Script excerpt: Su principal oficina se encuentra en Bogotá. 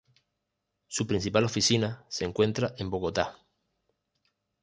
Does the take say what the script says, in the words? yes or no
yes